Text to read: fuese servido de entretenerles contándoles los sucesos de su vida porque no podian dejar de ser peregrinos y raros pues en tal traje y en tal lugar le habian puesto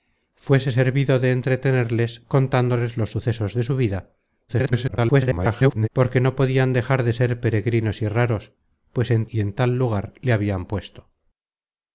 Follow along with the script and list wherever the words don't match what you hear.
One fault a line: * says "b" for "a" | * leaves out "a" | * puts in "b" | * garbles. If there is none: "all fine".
* garbles
* leaves out "tal traje"